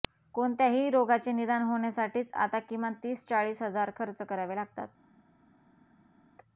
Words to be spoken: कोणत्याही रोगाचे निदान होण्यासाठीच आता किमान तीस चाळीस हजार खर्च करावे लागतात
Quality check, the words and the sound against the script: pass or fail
pass